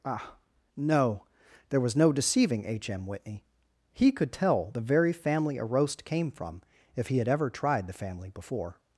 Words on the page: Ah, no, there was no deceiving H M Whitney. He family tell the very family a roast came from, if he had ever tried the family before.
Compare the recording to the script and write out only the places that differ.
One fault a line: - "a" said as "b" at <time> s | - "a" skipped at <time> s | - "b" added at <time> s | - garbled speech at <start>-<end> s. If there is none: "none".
- "family" said as "could" at 4.1 s